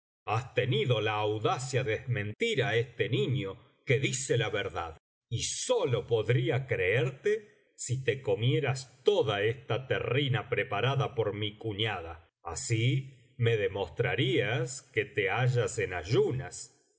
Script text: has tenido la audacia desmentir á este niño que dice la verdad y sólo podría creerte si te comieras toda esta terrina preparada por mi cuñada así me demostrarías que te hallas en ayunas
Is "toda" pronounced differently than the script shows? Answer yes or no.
no